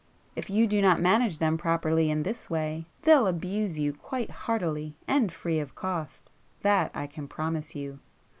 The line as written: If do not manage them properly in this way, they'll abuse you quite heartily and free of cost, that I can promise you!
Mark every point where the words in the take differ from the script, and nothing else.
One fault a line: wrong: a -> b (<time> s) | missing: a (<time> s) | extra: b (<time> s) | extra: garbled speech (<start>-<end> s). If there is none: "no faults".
extra: you (0.5 s)